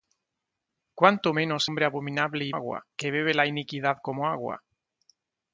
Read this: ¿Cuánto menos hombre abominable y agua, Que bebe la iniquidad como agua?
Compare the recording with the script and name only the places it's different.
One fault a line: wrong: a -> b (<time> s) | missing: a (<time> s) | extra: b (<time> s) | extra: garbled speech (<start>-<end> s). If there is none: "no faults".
no faults